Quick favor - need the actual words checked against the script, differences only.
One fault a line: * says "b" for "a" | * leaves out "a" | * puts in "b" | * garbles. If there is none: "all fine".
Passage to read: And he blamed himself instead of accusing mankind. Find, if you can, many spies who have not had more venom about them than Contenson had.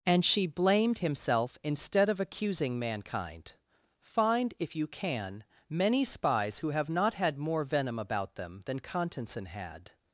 * says "she" for "he"